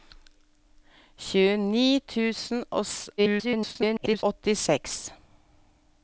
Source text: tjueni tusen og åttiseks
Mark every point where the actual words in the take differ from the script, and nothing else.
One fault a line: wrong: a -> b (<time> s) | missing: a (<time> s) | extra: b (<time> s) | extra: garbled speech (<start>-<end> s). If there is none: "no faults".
extra: garbled speech (3.2-4.2 s)